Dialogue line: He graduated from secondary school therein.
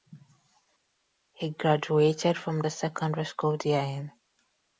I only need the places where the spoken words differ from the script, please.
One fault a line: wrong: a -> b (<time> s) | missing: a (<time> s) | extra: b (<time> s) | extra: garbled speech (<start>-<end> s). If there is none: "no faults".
extra: the (2.6 s)